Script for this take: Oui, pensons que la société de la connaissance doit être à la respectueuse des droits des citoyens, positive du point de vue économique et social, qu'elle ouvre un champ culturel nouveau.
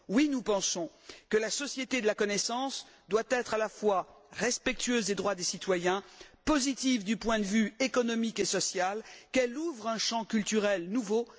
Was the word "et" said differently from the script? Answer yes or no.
no